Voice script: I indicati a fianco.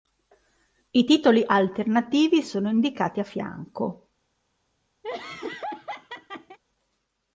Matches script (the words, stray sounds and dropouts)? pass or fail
fail